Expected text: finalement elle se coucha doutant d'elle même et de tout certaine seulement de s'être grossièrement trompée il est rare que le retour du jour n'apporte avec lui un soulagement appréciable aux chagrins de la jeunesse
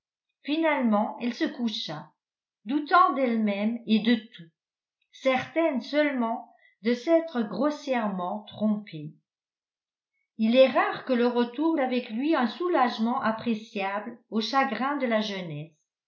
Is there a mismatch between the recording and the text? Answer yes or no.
yes